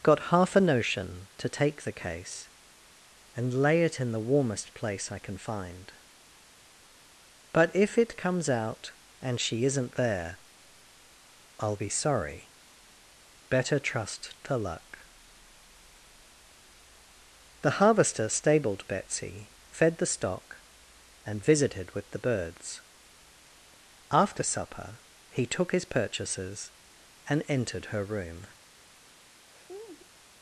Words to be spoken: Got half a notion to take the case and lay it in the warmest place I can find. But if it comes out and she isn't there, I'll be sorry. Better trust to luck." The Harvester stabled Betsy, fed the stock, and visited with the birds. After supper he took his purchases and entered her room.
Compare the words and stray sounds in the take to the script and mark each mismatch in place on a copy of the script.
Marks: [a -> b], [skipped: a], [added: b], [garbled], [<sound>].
Got half a notion to take the case and lay it in the warmest place I can find. But if it comes out and she isn't there, I'll be sorry. Better trust to luck." The Harvester stabled Betsy, fed the stock, and visited with the birds. After supper he took his purchases and entered her room. [laugh]